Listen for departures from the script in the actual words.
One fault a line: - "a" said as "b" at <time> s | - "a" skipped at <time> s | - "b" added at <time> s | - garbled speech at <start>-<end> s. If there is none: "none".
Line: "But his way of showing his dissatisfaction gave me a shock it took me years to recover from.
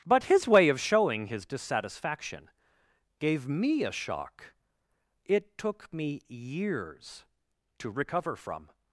none